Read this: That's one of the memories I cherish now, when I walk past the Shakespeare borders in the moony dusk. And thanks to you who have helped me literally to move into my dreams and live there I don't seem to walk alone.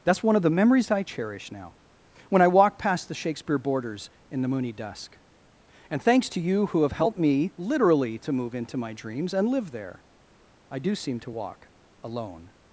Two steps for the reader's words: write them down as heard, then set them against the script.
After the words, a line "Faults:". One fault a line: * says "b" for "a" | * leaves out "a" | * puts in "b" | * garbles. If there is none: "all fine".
That's one of the memories I cherish now, when I walk past the Shakespeare borders in the moony dusk. And thanks to you who have helped me literally to move into my dreams and live there I do seem to walk alone.
Faults:
* says "do" for "don't"